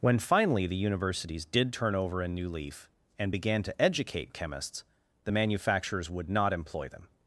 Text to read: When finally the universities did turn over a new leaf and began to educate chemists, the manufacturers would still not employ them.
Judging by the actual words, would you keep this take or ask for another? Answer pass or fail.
fail